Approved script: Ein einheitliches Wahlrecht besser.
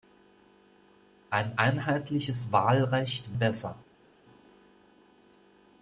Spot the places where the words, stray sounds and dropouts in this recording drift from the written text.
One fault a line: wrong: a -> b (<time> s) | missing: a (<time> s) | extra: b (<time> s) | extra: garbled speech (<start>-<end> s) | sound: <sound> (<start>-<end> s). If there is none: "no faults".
no faults